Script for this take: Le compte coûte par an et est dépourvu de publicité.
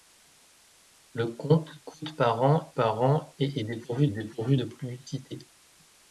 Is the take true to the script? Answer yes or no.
no